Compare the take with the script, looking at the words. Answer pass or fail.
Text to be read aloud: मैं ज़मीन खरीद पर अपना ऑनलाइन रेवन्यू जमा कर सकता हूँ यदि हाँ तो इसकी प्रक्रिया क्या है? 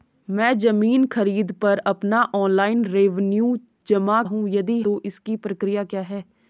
fail